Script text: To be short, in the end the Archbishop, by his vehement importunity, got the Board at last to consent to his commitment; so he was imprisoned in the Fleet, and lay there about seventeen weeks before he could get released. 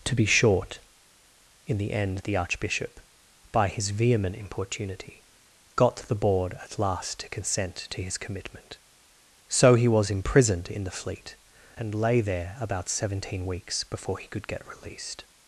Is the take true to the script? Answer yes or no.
yes